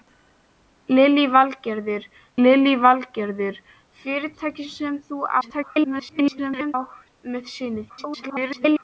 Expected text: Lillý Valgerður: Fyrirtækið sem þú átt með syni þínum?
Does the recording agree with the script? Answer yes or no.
no